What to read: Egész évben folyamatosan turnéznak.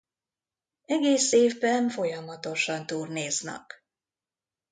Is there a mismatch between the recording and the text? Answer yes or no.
no